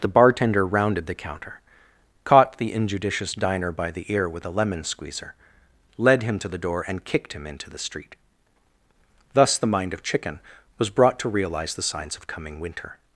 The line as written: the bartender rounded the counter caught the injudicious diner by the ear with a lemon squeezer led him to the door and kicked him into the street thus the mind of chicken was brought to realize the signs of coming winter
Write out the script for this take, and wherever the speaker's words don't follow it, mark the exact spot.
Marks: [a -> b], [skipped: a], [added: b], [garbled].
the bartender rounded the counter caught the injudicious diner by the ear with a lemon squeezer led him to the door and kicked him into the street thus the mind of chicken was brought to realize the signs of coming winter